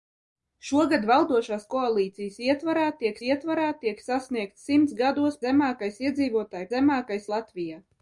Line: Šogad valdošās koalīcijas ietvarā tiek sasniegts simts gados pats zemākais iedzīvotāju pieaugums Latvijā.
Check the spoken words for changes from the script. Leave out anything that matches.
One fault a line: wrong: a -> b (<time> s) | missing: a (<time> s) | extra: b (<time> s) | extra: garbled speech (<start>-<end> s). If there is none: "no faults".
extra: ietvarā tiek (3.3 s)
missing: pats (5.4 s)
wrong: pieaugums -> zemākais (6.7 s)